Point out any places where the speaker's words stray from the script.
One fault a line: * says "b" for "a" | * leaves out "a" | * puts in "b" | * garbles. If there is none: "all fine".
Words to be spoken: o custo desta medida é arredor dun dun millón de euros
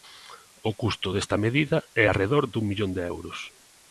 * leaves out "dun"